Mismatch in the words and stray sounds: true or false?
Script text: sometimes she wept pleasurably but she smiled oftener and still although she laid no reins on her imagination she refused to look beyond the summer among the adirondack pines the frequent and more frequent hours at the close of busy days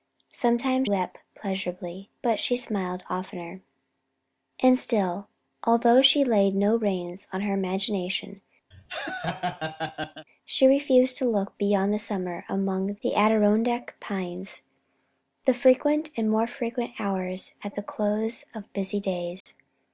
true